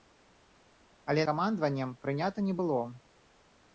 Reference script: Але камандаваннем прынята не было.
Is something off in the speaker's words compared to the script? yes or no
no